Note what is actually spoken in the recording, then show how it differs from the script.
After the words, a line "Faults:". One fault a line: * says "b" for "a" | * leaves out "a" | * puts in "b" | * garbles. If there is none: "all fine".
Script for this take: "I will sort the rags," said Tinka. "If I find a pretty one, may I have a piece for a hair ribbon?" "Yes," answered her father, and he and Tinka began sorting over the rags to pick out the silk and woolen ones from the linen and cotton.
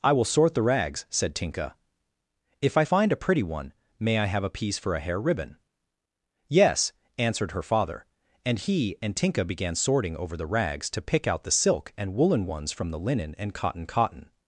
"I will sort the rags," said Tinka. "If I find a pretty one, may I have a piece for a hair ribbon?" "Yes," answered her father, and he and Tinka began sorting over the rags to pick out the silk and woolen ones from the linen and cotton cotton.
Faults:
* puts in "cotton"